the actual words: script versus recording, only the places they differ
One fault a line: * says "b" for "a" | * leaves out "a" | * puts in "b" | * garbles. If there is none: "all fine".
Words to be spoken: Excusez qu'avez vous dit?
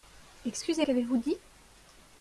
all fine